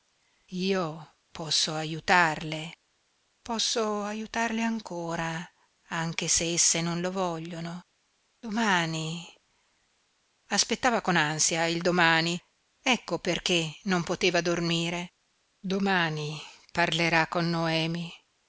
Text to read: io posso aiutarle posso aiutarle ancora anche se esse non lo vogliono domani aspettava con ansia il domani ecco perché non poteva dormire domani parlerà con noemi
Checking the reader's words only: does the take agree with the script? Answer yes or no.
yes